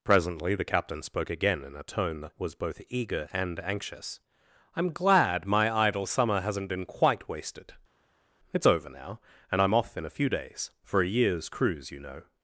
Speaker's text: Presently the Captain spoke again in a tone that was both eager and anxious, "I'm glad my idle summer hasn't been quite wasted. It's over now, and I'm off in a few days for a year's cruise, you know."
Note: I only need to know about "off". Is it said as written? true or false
true